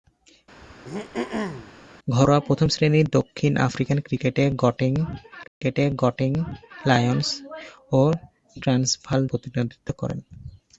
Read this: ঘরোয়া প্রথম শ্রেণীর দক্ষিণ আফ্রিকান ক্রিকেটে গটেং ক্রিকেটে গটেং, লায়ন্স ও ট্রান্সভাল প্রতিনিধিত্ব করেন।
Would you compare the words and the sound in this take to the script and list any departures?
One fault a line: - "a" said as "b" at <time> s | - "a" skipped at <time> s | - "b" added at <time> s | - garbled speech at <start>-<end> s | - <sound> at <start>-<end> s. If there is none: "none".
- throat clearing at 0.6-1.7 s
- dropout at 5.5-5.6 s